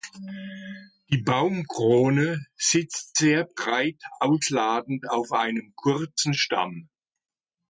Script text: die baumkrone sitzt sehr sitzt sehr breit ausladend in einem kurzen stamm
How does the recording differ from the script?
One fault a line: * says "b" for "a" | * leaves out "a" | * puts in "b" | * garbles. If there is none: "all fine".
* leaves out "sitzt sehr"
* says "auf" for "in"